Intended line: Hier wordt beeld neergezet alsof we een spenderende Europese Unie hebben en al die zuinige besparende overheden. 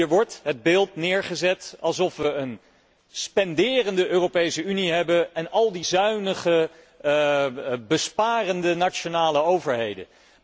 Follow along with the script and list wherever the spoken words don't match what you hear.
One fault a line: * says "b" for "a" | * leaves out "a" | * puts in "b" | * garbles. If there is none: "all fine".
* puts in "het"
* puts in "nationale"